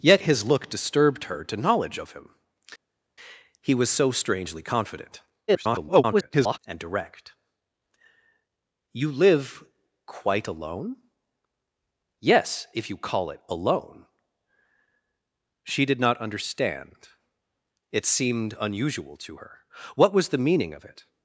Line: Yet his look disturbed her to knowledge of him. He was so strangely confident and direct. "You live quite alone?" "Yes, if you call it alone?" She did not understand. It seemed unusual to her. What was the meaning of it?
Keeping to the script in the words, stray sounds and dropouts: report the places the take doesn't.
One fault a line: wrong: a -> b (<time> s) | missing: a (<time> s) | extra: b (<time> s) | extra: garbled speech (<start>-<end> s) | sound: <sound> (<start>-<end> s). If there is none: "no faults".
extra: garbled speech (5.5-6.6 s)